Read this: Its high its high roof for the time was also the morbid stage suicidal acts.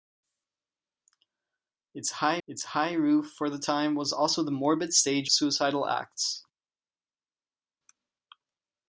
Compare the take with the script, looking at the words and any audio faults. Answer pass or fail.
pass